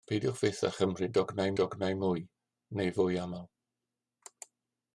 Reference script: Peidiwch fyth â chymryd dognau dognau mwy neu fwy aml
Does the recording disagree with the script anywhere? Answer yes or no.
no